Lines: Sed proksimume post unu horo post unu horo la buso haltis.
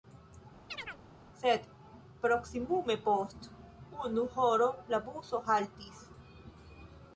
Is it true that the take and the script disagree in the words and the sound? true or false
true